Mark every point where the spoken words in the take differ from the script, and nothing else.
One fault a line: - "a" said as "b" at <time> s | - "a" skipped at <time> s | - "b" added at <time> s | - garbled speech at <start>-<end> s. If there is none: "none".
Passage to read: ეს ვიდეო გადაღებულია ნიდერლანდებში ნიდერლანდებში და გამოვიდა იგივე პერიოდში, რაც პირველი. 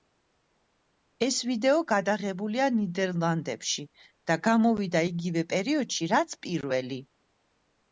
- "ნიდერლანდებში" skipped at 3.9 s